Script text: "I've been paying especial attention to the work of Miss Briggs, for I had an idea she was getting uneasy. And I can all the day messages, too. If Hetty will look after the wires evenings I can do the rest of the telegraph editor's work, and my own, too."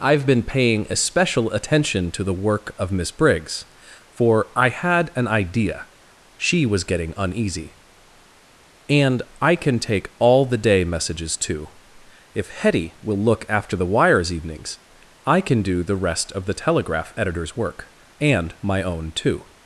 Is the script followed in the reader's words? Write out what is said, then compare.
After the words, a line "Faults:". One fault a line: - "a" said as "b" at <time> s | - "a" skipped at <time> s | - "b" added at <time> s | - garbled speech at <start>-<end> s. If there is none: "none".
"I've been paying especial attention to the work of Miss Briggs, for I had an idea she was getting uneasy. And I can take all the day messages, too. If Hetty will look after the wires evenings I can do the rest of the telegraph editor's work, and my own, too."
Faults:
- "take" added at 9.8 s